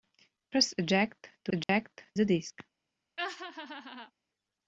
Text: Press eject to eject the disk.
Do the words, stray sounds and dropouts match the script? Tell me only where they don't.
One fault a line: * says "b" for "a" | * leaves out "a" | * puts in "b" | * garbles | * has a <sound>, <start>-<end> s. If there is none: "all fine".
* has a dropout, 1.6-1.7 s
* has a laugh, 3.2-4.1 s